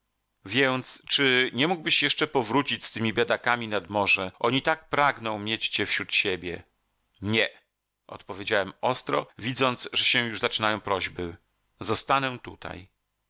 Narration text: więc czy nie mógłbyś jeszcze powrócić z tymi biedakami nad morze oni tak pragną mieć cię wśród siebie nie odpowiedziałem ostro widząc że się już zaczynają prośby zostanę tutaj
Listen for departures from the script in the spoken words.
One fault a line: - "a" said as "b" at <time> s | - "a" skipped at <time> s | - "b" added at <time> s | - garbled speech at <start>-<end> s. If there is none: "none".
none